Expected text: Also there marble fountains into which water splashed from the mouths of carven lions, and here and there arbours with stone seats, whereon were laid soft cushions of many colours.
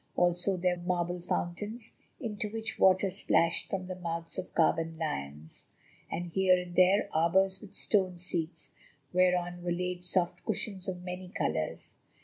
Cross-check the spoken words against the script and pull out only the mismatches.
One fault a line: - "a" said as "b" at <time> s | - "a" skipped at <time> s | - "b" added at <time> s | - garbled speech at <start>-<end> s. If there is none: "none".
none